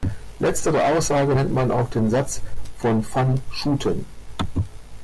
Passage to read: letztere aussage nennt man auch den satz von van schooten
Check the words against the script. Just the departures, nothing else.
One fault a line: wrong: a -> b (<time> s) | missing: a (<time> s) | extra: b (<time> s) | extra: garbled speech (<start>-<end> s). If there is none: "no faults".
no faults